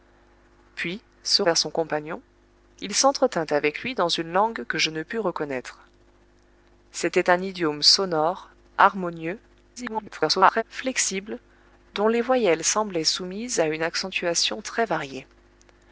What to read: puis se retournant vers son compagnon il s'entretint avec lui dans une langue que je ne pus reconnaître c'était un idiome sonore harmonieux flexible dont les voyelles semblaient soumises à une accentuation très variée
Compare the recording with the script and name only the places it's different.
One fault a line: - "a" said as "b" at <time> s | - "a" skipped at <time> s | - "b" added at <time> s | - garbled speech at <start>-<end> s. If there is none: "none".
- "retournant" skipped at 1.4 s
- garbled speech at 9.8-10.6 s